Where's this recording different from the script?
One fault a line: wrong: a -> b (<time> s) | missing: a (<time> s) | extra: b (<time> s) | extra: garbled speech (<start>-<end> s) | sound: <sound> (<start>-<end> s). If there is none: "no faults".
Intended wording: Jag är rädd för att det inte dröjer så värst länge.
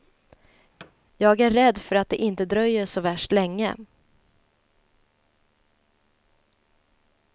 sound: thud (0.8-0.9 s)